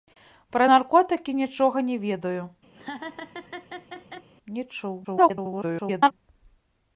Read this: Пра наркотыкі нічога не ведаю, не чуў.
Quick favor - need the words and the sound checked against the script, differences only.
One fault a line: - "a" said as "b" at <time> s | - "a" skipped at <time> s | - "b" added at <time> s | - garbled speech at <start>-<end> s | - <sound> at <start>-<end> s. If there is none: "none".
- laugh at 2.7-4.3 s
- garbled speech at 5.0-6.1 s